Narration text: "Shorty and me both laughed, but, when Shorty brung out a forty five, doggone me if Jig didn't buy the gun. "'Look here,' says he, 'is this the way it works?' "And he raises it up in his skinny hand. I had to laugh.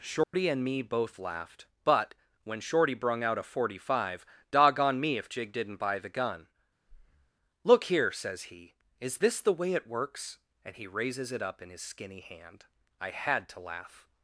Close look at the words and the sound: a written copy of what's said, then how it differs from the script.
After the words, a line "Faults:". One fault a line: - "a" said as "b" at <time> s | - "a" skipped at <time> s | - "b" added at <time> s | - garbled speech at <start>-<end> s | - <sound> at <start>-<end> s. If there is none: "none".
"Shorty and me both laughed, but, when Shorty brung out a forty five, doggone me if Jig didn't buy the gun. "'Look here,' says he, 'is this the way it works?' "And he raises it up in his skinny hand. I had to laugh.
Faults:
- dropout at 0.2-0.3 s
- breath at 6.9-7.3 s